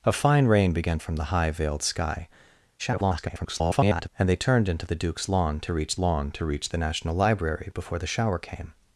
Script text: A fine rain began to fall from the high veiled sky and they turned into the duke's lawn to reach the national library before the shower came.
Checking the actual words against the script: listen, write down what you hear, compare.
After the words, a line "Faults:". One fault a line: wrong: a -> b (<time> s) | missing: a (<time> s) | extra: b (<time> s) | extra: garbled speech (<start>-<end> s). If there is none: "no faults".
A fine rain began from the high veiled sky [garbled] and they turned into the duke's lawn to reach lawn to reach the national library before the shower came.
Faults:
missing: to fall (1.0 s)
extra: garbled speech (2.8-4.1 s)
extra: lawn to reach (6.0 s)